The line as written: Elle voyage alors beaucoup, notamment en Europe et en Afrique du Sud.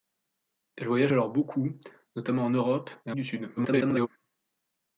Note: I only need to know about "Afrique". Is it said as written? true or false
false